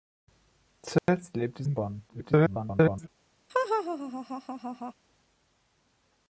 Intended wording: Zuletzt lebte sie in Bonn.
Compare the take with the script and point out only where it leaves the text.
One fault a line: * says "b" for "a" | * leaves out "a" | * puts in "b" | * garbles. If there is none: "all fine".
* leaves out "sie"
* garbles